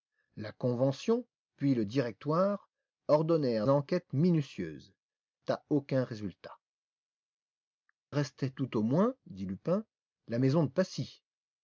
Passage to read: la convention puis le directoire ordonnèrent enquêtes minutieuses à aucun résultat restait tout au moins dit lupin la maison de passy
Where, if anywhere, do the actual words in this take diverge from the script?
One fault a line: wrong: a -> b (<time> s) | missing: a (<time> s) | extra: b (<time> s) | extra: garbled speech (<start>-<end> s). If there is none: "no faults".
no faults